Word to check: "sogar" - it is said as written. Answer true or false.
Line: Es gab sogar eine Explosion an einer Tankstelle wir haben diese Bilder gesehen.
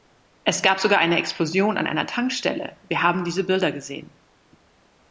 true